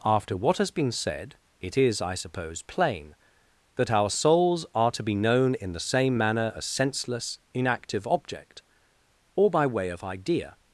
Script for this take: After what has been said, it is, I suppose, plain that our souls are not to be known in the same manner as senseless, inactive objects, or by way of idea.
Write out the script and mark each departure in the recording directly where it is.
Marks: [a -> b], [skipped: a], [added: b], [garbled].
After what has been said, it is, I suppose, plain that our souls are [skipped: not] to be known in the same manner as senseless, inactive [objects, -> object] or by way of idea.